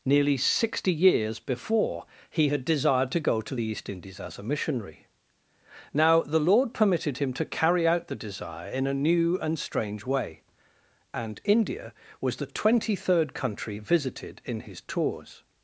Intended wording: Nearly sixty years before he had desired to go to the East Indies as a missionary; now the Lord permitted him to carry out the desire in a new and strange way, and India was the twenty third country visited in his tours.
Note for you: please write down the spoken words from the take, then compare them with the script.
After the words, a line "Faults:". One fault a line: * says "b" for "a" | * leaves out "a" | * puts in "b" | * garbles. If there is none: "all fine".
Nearly sixty years before he had desired to go to the East Indies as a missionary; now the Lord permitted him to carry out the desire in a new and strange way, and India was the twenty third country visited in his tours.
Faults:
all fine